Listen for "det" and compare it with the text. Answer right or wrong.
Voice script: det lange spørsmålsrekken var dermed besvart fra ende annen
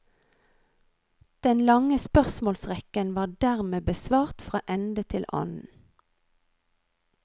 wrong